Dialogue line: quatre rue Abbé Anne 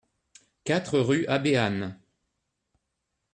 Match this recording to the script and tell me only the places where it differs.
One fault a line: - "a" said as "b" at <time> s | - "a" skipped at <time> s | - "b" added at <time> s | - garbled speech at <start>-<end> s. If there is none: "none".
none